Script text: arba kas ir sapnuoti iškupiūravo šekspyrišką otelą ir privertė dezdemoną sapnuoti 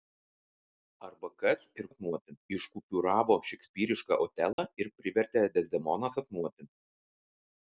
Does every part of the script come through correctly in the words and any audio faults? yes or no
no